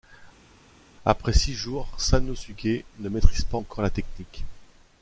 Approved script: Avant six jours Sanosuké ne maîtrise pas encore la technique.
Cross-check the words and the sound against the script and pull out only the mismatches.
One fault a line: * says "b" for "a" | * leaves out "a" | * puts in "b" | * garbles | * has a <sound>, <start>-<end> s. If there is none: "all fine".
* says "Après" for "Avant"